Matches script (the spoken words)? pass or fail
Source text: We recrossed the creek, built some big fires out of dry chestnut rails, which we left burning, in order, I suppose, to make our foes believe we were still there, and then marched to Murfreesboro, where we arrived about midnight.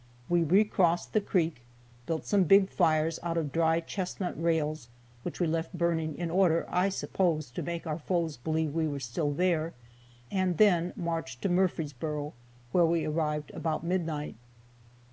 pass